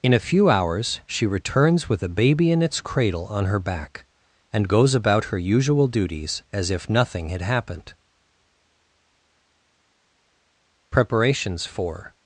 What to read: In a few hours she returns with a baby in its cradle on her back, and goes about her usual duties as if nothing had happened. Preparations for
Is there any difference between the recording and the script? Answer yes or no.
no